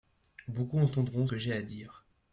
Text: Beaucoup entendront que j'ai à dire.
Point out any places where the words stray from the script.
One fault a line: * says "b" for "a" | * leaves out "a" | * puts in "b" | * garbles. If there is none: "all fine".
all fine